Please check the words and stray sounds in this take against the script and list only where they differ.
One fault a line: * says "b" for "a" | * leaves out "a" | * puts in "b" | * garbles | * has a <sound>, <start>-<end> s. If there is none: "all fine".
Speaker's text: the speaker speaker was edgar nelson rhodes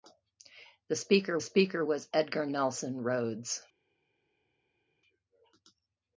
all fine